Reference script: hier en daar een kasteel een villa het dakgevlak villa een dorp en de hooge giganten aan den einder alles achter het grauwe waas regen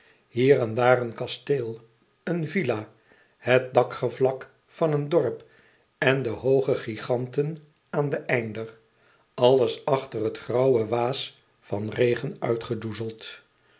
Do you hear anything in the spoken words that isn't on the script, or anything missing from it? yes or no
yes